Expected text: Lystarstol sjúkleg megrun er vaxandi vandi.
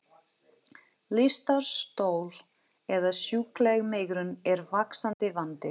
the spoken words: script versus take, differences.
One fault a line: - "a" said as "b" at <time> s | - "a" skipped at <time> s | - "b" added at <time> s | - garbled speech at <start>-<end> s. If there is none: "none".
- "eða" added at 3.0 s